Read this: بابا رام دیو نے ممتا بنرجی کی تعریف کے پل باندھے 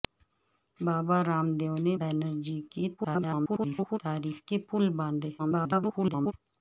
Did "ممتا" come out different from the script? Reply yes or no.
yes